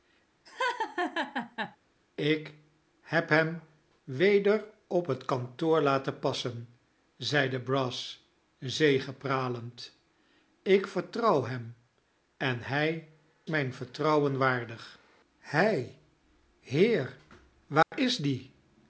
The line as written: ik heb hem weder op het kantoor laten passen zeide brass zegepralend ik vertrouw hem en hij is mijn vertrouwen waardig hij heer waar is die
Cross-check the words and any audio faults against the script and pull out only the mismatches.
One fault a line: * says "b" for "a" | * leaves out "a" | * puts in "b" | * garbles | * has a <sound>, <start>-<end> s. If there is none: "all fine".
* has a laugh, 0.5-1.8 s
* leaves out "is"
* has a dropout, 17.8-17.9 s